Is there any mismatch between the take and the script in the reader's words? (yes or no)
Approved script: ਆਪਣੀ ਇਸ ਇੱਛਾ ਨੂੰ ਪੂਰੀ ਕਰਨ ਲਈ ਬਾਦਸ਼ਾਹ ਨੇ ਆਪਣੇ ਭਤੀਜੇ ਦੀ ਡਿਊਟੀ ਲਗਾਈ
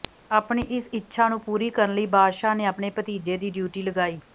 no